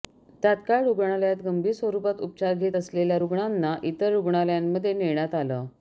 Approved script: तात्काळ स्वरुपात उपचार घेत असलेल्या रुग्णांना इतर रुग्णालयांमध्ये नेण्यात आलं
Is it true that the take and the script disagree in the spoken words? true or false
true